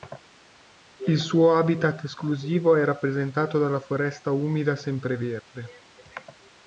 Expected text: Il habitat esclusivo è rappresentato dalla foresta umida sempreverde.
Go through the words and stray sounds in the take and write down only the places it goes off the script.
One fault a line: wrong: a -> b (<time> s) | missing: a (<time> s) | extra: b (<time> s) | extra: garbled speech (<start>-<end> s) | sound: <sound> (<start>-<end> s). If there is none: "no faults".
extra: suo (1.2 s)